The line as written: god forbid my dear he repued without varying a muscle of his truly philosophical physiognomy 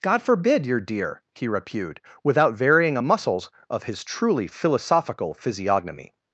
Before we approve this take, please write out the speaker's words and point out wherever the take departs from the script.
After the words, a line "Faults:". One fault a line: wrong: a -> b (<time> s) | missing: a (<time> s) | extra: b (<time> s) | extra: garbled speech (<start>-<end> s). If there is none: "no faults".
god forbid your dear he repued without varying a muscles of his truly philosophical physiognomy
Faults:
wrong: my -> your (0.7 s)
wrong: muscle -> muscles (3.0 s)